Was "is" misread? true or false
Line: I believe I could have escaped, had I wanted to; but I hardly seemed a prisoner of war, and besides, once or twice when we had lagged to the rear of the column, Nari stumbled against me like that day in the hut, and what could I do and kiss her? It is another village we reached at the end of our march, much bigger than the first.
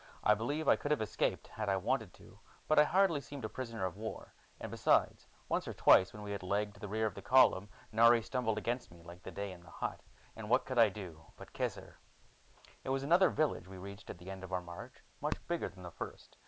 true